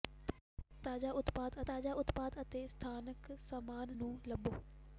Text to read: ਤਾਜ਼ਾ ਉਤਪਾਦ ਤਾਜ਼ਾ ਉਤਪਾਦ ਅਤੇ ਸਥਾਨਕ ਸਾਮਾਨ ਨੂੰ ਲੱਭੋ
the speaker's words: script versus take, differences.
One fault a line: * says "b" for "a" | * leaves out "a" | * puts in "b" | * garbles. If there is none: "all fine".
all fine